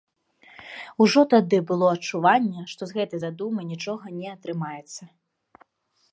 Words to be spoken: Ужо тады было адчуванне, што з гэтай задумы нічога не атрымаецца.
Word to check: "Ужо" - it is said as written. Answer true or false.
true